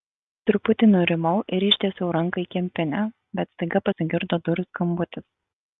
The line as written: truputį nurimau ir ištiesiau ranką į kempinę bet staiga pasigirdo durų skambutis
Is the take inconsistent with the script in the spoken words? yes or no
no